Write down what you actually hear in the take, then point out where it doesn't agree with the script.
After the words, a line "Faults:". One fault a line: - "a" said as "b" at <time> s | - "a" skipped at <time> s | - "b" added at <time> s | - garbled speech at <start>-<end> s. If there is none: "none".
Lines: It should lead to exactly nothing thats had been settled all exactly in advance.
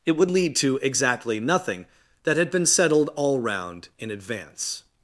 It would lead to exactly nothing that had been settled all round in advance.
Faults:
- "should" said as "would" at 0.1 s
- "thats" said as "that" at 2.2 s
- "exactly" said as "round" at 3.4 s